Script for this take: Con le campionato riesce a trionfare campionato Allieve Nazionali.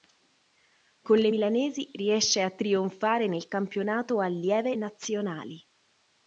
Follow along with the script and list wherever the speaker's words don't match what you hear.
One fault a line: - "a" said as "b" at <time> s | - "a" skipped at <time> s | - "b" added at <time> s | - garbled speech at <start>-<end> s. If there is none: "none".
- "campionato" said as "milanesi" at 1.3 s
- "nel" added at 3.3 s